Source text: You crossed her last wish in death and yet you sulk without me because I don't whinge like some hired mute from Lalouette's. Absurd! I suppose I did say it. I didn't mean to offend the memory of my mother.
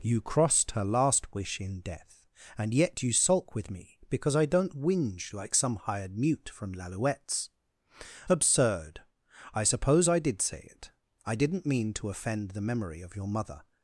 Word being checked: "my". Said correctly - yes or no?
no